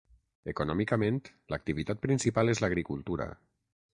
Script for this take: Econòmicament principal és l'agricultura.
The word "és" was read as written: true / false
true